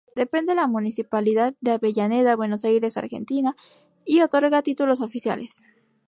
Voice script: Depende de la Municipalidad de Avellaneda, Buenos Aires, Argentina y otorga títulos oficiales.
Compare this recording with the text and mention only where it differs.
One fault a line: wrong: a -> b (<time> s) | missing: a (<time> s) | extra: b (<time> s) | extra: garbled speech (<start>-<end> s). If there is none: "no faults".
no faults